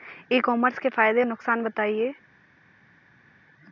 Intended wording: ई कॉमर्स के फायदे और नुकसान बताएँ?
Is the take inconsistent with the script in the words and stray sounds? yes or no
yes